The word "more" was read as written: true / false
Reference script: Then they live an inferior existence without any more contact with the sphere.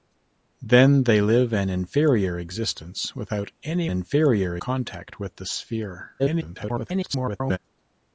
false